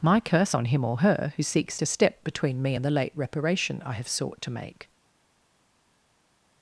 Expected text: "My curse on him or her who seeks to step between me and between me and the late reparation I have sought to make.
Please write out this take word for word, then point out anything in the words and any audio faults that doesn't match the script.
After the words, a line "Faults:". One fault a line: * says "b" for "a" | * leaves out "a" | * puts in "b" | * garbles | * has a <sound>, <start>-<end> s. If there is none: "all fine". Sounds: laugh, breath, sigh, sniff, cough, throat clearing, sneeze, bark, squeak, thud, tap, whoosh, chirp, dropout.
"My curse on him or her who seeks to step between me and the late reparation I have sought to make.
Faults:
* leaves out "between me and"